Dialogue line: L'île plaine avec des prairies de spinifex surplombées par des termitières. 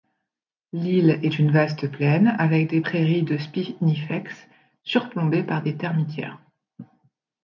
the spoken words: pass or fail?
fail